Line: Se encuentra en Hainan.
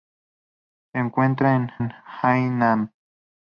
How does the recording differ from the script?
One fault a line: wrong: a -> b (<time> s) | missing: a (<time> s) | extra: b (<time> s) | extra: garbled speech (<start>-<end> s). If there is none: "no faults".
extra: en (1.8 s)